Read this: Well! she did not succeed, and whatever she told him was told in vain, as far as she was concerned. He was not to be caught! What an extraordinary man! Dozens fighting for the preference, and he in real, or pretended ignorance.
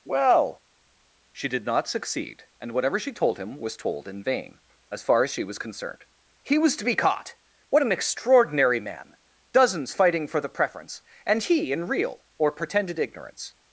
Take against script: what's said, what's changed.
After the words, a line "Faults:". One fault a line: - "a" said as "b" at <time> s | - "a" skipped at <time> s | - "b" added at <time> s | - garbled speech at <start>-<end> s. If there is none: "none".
Well! she did not succeed, and whatever she told him was told in vain, as far as she was concerned. He was to be caught! What an extraordinary man! Dozens fighting for the preference, and he in real, or pretended ignorance.
Faults:
- "not" skipped at 6.8 s